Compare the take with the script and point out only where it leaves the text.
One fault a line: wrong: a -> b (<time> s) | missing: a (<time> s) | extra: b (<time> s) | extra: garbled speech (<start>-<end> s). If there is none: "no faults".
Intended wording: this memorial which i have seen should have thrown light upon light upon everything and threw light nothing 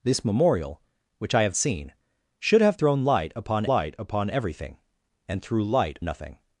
no faults